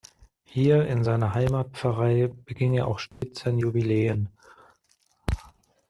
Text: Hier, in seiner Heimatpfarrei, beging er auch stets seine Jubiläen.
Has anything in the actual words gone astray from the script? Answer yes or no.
no